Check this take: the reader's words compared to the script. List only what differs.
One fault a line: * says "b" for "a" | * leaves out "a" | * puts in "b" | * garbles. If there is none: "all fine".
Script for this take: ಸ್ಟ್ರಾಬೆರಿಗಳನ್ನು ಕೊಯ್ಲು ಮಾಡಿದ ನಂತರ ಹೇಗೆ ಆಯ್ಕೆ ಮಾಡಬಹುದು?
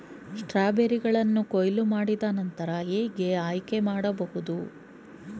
all fine